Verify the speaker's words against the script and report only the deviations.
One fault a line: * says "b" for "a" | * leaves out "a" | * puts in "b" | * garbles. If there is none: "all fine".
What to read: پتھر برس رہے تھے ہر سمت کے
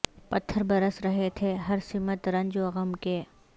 * puts in "رنج و غم"